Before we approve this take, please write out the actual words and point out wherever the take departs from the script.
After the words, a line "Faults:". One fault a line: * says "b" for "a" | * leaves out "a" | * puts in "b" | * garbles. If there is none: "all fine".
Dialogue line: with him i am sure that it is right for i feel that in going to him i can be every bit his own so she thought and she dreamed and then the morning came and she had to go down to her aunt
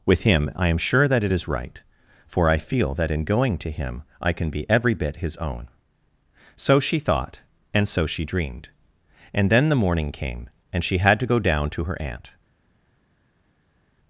with him i am sure that it is right for i feel that in going to him i can be every bit his own so she thought and so she dreamed and then the morning came and she had to go down to her aunt
Faults:
* puts in "so"